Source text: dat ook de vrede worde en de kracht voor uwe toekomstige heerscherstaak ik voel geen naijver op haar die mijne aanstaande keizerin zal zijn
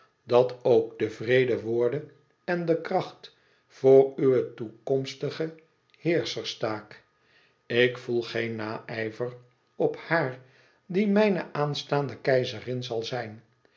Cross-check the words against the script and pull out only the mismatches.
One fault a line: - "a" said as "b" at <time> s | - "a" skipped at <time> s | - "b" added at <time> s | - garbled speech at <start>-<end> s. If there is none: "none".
none